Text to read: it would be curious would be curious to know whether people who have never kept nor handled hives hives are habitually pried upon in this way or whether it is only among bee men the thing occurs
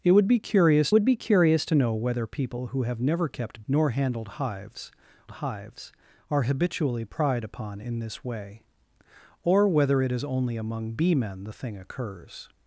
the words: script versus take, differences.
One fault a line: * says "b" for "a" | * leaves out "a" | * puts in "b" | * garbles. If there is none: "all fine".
all fine